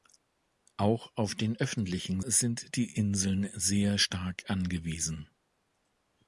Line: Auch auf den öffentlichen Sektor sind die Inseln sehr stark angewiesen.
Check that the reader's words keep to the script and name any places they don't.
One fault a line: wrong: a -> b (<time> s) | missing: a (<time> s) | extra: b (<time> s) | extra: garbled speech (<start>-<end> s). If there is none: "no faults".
missing: Sektor (2.2 s)